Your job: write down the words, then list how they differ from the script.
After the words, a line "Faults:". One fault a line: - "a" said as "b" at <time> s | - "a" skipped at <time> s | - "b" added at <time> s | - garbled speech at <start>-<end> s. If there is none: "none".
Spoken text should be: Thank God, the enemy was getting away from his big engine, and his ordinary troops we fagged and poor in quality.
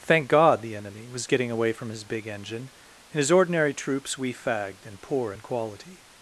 Thank God, the enemy was getting away from his big engine, and his ordinary troops we fagged and poor in quality.
Faults:
none